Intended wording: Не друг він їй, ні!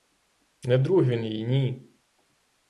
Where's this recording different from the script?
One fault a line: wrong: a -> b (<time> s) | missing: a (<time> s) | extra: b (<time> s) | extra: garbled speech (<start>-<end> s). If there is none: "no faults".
no faults